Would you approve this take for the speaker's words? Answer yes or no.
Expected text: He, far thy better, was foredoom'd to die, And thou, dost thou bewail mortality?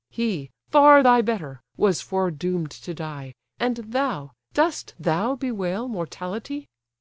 yes